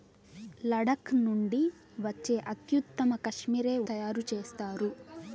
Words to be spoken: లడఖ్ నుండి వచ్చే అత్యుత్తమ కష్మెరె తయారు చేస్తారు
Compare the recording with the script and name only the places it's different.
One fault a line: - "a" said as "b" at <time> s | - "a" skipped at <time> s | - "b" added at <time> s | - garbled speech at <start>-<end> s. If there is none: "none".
none